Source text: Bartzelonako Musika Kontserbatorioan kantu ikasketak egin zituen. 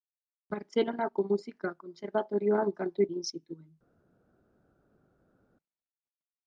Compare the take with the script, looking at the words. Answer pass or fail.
fail